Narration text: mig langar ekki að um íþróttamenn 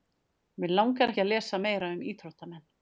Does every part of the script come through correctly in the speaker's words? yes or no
no